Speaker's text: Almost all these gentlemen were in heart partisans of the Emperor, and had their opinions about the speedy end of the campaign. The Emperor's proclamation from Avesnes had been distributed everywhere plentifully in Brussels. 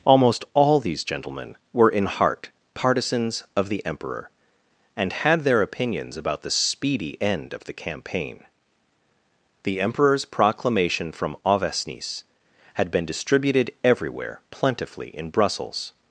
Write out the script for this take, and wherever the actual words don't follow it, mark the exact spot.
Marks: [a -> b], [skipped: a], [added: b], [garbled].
Almost all these gentlemen were in heart partisans of the Emperor, and had their opinions about the speedy end of the campaign. The Emperor's proclamation from Avesnes had been distributed everywhere plentifully in Brussels.